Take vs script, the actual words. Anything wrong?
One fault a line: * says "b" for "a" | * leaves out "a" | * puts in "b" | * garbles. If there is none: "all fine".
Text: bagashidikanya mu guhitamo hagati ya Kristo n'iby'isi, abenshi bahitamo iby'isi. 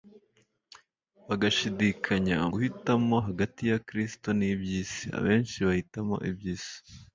* leaves out "mu"